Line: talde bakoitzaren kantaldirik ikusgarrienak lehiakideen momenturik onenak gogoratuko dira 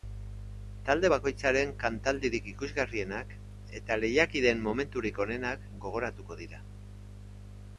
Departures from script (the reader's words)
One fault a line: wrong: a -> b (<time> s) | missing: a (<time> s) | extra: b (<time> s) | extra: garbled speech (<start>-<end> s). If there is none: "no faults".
extra: eta (3.8 s)